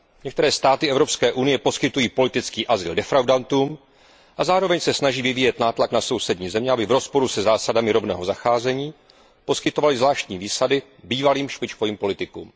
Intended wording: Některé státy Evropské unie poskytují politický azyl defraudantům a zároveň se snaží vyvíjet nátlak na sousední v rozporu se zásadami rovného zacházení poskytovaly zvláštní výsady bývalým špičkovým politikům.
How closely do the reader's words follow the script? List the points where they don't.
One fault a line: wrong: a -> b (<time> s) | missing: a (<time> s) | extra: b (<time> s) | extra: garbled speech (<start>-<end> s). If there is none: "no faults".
extra: země aby (6.5 s)